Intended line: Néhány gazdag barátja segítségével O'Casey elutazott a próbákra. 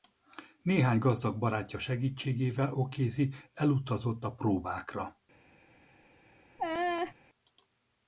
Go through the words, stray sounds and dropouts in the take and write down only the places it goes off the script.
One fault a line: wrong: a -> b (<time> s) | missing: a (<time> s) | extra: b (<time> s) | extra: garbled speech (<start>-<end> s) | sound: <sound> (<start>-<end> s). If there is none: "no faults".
sound: laugh (6.6-7.1 s)